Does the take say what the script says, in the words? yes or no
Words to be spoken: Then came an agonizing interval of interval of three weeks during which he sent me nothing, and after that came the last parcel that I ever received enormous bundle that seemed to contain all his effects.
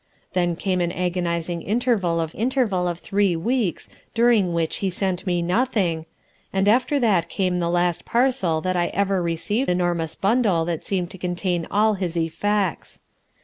yes